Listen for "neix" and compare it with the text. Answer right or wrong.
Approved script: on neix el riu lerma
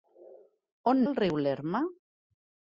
wrong